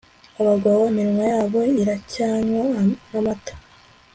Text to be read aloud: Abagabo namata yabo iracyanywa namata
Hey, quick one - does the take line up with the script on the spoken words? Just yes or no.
no